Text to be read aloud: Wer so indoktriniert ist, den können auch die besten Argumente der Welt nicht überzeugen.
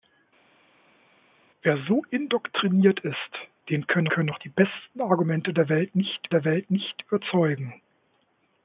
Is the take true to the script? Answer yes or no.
no